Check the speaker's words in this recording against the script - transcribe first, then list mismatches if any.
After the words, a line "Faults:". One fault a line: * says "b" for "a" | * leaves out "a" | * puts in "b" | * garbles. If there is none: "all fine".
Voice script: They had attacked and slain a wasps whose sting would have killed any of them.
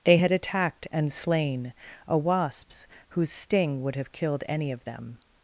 They had attacked and slain a wasps whose sting would have killed any of them.
Faults:
all fine